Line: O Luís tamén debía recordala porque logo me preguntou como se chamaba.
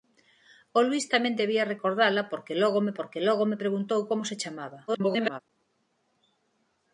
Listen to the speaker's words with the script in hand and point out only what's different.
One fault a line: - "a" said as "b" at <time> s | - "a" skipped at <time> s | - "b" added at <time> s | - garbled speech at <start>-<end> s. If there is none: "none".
- "porque logo me" added at 3.0 s
- garbled speech at 4.9-5.4 s